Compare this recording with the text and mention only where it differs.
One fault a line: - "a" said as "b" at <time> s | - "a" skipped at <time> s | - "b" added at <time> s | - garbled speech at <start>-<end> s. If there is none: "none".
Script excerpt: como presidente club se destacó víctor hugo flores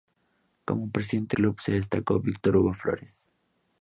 none